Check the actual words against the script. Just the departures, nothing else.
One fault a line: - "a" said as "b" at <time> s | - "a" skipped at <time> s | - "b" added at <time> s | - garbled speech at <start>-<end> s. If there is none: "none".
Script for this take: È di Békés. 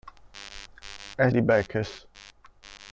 none